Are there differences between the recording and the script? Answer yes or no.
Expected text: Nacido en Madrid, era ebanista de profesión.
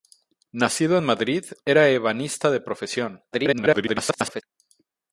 yes